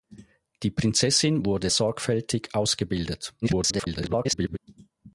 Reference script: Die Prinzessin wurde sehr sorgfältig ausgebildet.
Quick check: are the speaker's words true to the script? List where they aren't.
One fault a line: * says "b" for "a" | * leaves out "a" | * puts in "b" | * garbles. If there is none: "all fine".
* leaves out "sehr"
* garbles